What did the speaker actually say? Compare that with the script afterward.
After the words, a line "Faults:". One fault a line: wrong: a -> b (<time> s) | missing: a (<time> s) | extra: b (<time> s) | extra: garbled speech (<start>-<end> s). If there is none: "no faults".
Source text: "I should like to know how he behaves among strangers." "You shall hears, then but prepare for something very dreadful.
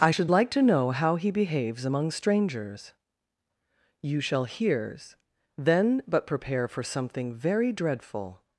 "I should like to know how he behaves among strangers." "You shall hears, then but prepare for something very dreadful.
Faults:
no faults